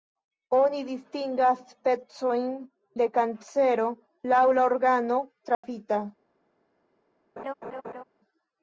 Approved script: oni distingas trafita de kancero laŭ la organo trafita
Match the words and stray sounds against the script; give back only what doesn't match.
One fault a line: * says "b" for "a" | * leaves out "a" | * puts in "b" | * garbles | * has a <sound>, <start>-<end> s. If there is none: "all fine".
* says "specojn" for "trafita"
* has a dropout, 5.5-5.6 s
* has a laugh, 7.4-8.0 s